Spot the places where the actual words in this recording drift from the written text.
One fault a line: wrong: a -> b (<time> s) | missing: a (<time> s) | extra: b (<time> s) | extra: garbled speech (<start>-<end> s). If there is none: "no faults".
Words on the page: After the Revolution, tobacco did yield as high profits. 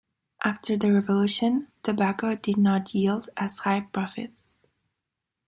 extra: not (2.6 s)